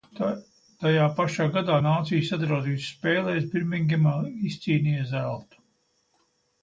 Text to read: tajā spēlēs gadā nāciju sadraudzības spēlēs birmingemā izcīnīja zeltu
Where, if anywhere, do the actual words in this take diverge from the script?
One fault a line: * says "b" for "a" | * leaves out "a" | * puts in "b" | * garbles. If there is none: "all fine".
* says "pašā" for "spēlēs"